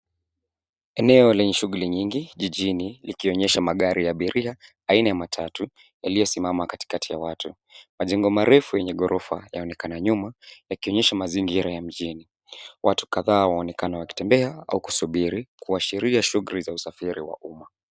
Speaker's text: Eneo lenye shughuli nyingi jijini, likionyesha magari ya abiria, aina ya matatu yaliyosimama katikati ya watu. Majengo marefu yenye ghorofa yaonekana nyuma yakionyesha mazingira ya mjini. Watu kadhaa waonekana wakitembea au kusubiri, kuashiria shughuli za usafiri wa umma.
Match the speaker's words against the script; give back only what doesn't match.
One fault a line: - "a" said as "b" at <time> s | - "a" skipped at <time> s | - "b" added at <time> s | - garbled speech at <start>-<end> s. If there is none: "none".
none